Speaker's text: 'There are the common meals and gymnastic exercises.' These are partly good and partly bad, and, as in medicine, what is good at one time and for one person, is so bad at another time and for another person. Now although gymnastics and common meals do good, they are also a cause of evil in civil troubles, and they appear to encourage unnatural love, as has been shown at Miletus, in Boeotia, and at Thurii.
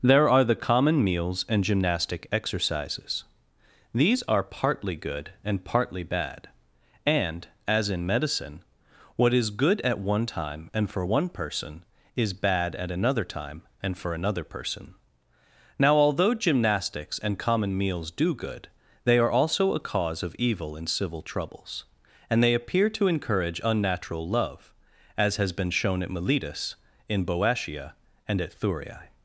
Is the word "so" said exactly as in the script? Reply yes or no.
no